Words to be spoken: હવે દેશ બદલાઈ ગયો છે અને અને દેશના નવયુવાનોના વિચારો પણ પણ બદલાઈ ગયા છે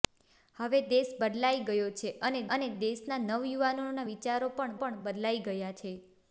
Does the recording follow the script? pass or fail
pass